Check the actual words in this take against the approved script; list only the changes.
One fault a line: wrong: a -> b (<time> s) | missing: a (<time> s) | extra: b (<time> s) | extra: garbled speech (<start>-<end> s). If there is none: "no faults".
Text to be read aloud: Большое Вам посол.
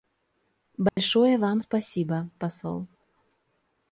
extra: спасибо (1.6 s)